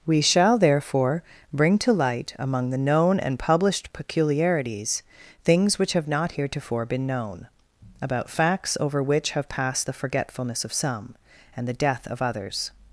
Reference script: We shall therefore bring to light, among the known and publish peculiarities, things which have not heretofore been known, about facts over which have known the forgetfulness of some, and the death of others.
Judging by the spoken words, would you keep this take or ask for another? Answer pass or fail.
fail